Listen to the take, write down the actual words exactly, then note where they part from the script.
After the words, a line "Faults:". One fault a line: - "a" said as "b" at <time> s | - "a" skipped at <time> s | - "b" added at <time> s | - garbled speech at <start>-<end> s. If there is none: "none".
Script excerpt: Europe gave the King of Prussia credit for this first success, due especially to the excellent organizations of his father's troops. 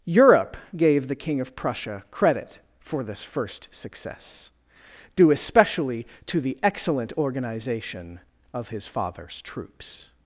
Europe gave the King of Prussia credit for this first success, due especially to the excellent organization of his father's troops.
Faults:
- "organizations" said as "organization" at 7.2 s